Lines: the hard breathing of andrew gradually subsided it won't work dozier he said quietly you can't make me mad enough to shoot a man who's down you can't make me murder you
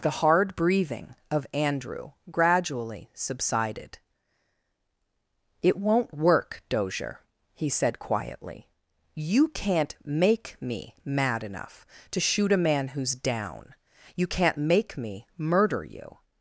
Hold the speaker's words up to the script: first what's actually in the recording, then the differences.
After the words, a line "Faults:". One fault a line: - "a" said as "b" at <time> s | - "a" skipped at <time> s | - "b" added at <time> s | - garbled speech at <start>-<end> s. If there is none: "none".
the hard breathing of andrew gradually subsided it won't work dozier he said quietly you can't make me mad enough to shoot a man who's down you can't make me murder you
Faults:
none